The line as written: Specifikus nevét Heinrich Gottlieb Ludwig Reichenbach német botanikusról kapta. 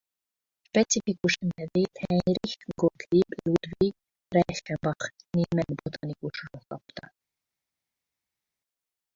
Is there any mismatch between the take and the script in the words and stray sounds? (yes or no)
no